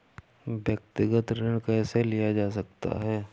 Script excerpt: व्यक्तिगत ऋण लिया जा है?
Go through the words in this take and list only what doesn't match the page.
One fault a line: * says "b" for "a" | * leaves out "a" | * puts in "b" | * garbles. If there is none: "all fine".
* puts in "कैसे"
* puts in "सकता"